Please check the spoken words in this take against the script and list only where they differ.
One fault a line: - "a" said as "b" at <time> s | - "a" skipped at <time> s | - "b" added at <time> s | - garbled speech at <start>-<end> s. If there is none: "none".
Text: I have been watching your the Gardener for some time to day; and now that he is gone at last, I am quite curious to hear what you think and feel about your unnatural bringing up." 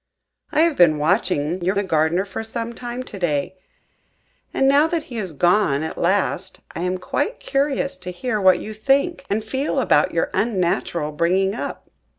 none